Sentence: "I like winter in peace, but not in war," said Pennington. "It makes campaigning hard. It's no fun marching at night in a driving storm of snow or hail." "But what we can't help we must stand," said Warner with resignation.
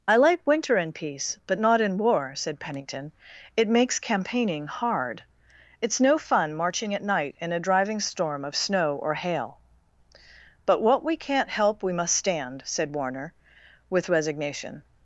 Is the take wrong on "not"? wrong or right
right